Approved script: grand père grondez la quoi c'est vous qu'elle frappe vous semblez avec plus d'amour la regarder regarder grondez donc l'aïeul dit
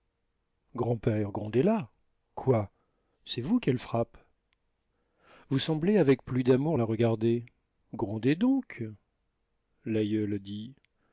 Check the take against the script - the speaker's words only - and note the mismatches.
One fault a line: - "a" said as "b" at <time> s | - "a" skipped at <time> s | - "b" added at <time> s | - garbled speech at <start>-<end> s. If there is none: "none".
- "regarder" skipped at 7.4 s